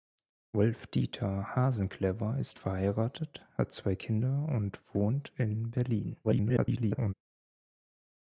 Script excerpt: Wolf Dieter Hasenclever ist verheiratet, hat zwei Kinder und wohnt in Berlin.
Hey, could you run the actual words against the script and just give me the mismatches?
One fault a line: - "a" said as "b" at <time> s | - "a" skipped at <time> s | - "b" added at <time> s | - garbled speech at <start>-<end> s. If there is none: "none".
- garbled speech at 6.2-7.1 s